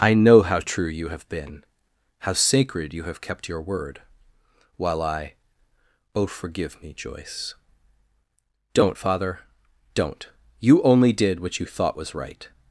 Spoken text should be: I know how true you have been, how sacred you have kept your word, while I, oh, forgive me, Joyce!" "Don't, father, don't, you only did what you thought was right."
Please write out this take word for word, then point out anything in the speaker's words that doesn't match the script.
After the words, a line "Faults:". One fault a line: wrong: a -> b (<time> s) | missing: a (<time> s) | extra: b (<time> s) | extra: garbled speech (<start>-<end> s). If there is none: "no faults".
I know how true you have been, how sacred you have kept your word, while I, oh, forgive me, Joyce!" "Don't, father, don't, you only did what you thought was right."
Faults:
no faults